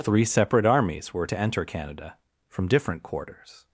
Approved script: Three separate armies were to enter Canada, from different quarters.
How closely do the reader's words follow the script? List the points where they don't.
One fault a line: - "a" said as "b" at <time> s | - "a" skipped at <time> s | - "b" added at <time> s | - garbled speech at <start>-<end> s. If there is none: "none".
none